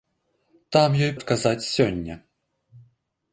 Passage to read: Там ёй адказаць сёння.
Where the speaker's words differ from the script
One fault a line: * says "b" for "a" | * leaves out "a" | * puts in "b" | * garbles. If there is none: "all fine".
all fine